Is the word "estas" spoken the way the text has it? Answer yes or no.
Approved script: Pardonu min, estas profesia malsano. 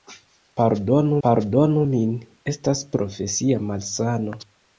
yes